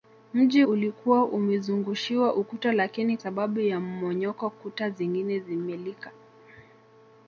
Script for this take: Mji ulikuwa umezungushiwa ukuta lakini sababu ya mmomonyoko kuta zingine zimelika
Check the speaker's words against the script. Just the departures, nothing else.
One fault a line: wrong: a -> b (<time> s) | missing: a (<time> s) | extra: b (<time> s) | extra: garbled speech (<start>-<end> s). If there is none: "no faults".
no faults